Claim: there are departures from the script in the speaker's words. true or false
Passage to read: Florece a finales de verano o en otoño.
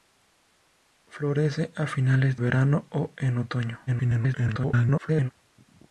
true